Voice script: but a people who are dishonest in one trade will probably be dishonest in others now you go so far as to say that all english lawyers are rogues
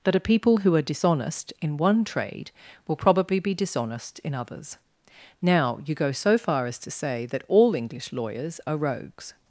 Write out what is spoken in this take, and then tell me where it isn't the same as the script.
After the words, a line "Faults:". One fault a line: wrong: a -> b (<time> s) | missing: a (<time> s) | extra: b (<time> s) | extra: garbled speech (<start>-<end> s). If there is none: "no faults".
that a people who are dishonest in one trade will probably be dishonest in others now you go so far as to say that all english lawyers are rogues
Faults:
wrong: but -> that (0.0 s)